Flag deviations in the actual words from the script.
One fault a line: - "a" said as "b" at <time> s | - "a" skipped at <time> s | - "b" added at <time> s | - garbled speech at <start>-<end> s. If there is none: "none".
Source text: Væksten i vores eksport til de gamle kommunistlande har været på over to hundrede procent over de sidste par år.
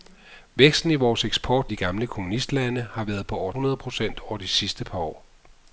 - "til" skipped at 1.7 s
- "to" skipped at 3.5 s